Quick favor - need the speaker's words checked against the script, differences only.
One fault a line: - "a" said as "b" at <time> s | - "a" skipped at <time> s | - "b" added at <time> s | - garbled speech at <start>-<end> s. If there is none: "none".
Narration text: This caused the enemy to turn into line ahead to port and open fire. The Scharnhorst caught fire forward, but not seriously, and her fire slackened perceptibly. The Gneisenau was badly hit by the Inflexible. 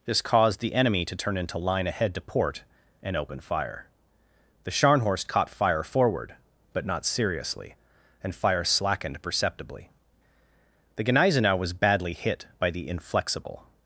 - "her" skipped at 8.3 s